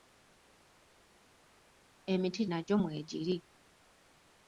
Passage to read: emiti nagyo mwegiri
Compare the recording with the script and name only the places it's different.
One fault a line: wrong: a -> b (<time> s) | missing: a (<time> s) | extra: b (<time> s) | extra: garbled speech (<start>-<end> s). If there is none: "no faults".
no faults